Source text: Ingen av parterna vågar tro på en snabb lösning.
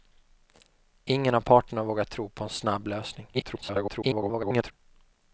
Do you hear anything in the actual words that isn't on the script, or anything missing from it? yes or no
yes